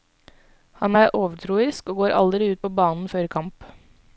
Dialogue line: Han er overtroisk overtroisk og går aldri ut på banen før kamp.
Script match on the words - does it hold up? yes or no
no